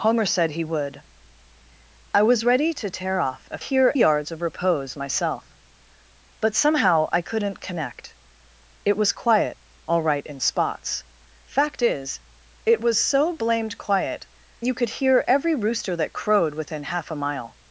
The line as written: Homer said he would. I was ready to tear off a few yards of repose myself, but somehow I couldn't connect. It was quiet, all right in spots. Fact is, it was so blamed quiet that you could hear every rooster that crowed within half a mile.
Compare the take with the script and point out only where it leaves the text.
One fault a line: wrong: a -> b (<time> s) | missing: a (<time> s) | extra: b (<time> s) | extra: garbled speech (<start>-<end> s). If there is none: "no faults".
wrong: few -> hear (3.6 s)
missing: that (14.3 s)